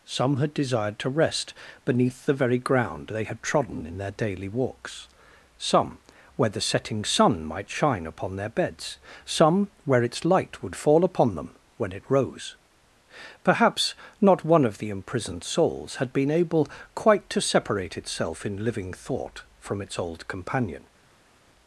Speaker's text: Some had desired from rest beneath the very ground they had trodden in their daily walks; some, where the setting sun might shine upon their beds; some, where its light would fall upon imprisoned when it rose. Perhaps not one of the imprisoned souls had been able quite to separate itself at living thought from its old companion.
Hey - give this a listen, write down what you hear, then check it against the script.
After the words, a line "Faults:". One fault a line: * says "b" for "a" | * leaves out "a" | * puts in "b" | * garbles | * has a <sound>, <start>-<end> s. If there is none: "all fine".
Some had desired to rest beneath the very ground they had trodden in their daily walks; some, where the setting sun might shine upon their beds; some, where its light would fall upon them when it rose. Perhaps not one of the imprisoned souls had been able quite to separate itself in living thought from its old companion.
Faults:
* says "to" for "from"
* says "them" for "imprisoned"
* says "in" for "at"